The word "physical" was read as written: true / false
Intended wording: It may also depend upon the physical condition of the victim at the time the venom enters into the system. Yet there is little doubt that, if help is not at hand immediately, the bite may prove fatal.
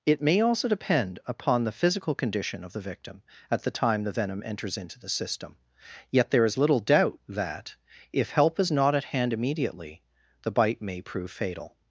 true